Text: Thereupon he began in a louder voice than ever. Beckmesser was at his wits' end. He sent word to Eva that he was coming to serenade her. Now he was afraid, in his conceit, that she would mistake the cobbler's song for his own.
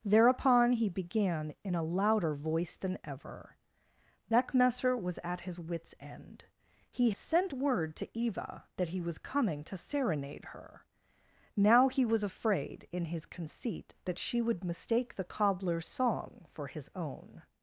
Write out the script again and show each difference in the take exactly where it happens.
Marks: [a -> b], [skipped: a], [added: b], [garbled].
Thereupon he began in a louder voice than ever. Beckmesser was at his wits' end. He sent word to Eva that he was coming to serenade her. Now he was afraid, in his conceit, that she would mistake the cobbler's song for his own.